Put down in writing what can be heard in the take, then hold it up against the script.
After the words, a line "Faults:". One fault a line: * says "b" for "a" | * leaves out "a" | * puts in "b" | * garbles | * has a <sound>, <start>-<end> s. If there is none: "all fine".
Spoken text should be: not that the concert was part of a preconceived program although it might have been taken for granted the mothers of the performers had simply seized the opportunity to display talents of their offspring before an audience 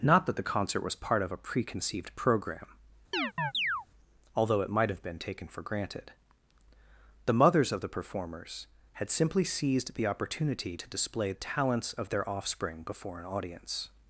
not that the concert was part of a preconceived program although it might have been taken for granted the mothers of the performers had simply seized the opportunity to display talents of their offspring before an audience
Faults:
* has a chirp, 3.1-3.9 s